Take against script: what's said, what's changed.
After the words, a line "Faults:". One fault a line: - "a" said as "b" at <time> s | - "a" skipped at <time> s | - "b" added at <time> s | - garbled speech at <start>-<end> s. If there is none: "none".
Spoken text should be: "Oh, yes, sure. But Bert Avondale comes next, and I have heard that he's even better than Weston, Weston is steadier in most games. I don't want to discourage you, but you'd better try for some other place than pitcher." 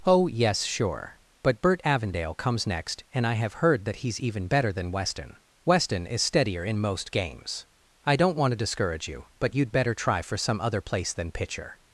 "Oh, yes, sure. But Bert Avondale comes next, and I have heard that he's even better than Weston, Weston is steadier in most games. I don't want to discourage you, but you'd better try for some other place than pitcher."
Faults:
none